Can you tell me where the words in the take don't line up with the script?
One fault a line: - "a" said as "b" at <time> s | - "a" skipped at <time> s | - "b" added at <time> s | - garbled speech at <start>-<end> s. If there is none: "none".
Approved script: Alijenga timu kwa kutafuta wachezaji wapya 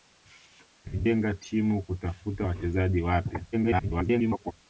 - "kwa" skipped at 1.8 s
- garbled speech at 3.5-4.5 s